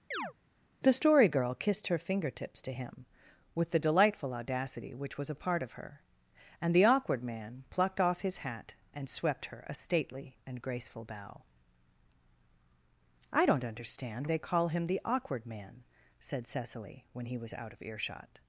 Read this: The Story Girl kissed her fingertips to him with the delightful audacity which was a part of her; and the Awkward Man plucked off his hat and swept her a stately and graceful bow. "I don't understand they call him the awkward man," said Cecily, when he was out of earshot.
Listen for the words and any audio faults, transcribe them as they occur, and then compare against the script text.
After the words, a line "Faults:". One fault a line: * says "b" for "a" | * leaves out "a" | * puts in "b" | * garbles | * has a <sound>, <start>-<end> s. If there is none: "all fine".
The Story Girl kissed her fingertips to him with the delightful audacity which was a part of her; and the Awkward Man plucked off his hat and swept her a stately and graceful bow. "I don't understand they call him the awkward man," said Cecily, when he was out of earshot.
Faults:
* has a chirp, 0.1-0.3 s